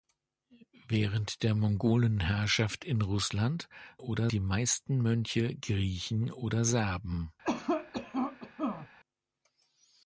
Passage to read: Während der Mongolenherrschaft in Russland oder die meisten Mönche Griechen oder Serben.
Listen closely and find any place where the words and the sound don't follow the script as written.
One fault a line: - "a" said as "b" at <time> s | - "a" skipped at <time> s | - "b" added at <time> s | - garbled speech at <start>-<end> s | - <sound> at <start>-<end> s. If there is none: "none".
- cough at 7.4-8.9 s